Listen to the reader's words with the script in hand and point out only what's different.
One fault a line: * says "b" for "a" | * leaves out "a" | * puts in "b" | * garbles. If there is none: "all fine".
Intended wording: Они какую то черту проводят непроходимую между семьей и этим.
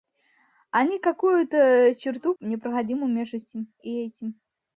* leaves out "проводят"
* says "этим" for "семьей"